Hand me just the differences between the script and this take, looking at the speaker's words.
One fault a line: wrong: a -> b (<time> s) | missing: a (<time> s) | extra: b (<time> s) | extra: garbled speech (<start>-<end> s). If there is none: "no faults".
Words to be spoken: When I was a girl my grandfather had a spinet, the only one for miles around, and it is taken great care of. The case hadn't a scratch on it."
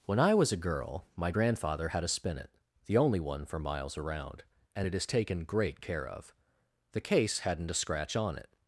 no faults